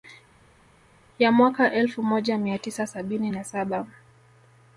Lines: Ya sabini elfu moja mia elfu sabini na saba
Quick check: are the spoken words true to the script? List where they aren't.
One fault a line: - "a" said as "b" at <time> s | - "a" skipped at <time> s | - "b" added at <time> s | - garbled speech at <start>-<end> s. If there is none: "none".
- "sabini" said as "mwaka" at 1.3 s
- "elfu" said as "tisa" at 2.6 s